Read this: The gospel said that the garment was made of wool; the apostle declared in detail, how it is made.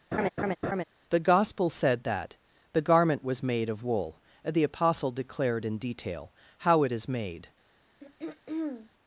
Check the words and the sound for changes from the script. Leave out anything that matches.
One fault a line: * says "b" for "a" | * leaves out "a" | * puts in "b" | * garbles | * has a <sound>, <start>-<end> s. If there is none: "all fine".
* has a laugh, 0.1-0.8 s
* has a throat clearing, 8.0-8.9 s